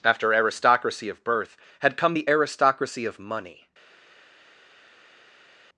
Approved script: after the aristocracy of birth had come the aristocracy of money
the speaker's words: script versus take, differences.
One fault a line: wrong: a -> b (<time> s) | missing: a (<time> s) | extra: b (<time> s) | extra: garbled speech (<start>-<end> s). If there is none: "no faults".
missing: the (0.3 s)